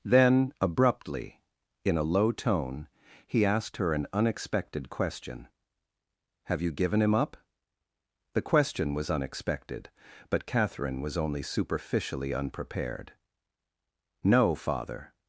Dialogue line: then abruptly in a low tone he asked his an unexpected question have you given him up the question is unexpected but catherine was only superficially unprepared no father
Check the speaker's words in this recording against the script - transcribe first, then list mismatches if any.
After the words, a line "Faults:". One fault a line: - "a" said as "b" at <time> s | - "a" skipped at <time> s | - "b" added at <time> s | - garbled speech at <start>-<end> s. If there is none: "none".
then abruptly in a low tone he asked her an unexpected question have you given him up the question was unexpected but catherine was only superficially unprepared no father
Faults:
- "his" said as "her" at 3.8 s
- "is" said as "was" at 8.9 s